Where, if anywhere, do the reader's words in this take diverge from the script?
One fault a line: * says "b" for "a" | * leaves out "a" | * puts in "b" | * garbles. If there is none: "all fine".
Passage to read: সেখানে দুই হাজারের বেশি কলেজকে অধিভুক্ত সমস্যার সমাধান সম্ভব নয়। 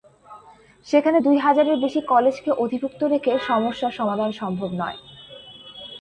* puts in "রেখে"